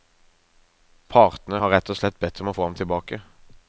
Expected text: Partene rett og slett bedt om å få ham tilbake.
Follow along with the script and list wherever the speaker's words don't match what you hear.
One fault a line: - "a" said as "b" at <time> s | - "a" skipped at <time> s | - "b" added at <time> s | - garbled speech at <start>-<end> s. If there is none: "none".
- "har" added at 1.6 s